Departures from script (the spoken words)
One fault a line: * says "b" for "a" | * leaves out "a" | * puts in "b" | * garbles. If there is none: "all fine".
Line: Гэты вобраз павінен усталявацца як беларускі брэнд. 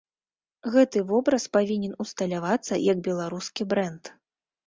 all fine